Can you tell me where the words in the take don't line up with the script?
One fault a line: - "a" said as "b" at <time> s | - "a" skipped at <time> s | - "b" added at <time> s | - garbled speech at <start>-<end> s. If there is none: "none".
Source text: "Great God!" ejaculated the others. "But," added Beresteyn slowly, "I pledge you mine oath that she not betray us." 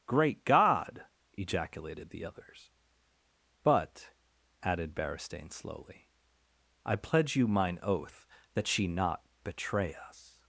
none